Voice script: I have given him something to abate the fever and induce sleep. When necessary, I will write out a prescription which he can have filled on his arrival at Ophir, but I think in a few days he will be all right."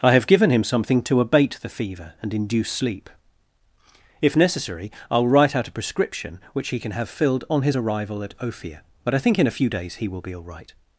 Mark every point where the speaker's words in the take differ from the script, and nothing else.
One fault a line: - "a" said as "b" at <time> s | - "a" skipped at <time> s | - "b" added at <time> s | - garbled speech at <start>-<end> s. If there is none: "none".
- "When" said as "If" at 4.2 s